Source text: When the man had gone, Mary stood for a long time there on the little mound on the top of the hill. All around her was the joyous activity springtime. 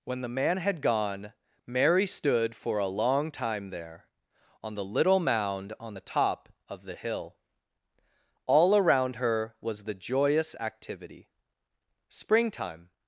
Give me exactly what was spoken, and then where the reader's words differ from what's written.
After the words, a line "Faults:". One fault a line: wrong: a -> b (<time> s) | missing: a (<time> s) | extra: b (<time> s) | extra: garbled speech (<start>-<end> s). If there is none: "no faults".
When the man had gone, Mary stood for a long time there on the little mound on the top of the hill. All around her was the joyous activity springtime.
Faults:
no faults